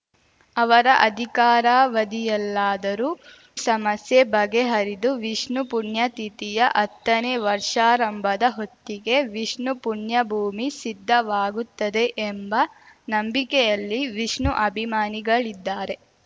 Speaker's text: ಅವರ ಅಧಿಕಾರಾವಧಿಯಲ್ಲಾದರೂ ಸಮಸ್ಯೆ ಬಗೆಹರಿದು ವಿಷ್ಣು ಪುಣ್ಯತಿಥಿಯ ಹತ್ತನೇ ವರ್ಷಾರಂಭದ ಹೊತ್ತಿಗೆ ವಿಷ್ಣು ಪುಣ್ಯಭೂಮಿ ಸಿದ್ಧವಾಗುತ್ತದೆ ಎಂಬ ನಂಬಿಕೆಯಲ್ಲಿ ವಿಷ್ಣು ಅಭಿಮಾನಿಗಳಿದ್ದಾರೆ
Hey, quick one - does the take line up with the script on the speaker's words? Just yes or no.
yes